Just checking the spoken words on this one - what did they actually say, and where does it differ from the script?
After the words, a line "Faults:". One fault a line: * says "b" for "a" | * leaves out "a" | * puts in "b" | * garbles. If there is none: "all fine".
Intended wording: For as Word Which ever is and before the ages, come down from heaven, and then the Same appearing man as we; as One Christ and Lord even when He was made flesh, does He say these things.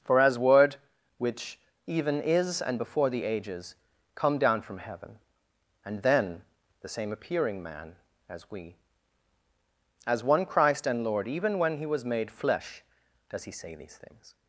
For as Word Which even is and before the ages, come down from heaven, and then the Same appearing man as we; as One Christ and Lord even when He was made flesh, does He say these things.
Faults:
* says "even" for "ever"